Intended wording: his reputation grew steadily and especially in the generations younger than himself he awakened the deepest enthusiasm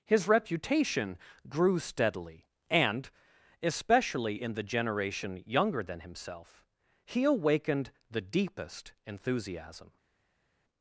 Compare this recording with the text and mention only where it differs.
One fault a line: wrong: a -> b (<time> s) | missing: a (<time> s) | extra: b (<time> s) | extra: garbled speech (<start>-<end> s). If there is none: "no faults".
wrong: generations -> generation (4.6 s)